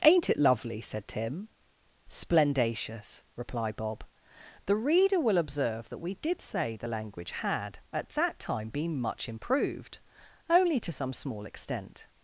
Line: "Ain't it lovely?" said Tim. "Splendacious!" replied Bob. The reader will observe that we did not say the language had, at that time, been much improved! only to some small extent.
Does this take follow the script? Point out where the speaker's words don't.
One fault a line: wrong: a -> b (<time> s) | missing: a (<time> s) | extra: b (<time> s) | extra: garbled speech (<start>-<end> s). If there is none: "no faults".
missing: not (6.4 s)